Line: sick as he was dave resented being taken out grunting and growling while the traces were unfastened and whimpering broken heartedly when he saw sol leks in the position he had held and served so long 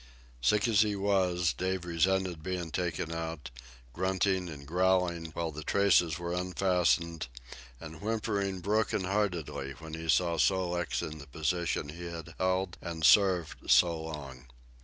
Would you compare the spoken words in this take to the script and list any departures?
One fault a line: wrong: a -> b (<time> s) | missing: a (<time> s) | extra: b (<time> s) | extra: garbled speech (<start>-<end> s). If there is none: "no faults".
no faults